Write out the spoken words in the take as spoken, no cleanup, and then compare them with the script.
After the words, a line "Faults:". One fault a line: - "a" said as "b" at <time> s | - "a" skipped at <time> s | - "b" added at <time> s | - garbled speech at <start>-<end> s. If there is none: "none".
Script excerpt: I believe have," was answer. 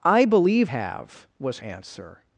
I believe have," was answer.
Faults:
none